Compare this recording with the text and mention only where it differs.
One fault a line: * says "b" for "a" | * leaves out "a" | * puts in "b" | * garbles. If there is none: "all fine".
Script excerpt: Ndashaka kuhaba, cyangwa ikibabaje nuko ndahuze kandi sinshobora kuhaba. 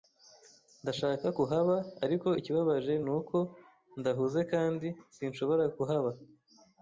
* says "ariko" for "cyangwa"